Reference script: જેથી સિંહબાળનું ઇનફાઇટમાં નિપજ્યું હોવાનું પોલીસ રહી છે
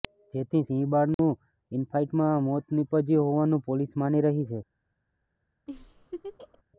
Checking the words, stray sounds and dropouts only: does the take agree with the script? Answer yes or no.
no